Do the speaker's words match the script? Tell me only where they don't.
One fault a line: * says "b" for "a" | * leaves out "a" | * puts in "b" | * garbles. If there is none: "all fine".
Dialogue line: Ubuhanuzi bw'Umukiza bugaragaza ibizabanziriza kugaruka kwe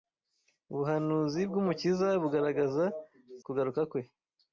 * leaves out "ibizabanziriza"